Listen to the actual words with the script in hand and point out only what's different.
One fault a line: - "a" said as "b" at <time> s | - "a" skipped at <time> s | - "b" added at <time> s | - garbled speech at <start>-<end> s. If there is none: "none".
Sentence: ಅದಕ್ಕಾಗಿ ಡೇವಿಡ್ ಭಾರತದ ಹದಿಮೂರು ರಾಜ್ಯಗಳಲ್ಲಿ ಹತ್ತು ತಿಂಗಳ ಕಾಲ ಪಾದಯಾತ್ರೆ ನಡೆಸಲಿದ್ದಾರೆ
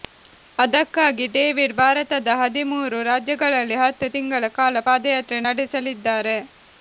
none